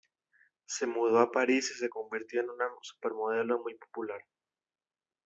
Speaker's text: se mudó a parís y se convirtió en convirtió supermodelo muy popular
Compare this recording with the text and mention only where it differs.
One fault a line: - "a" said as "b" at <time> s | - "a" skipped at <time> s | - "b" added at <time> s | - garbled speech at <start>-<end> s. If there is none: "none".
- "convirtió" said as "una" at 2.5 s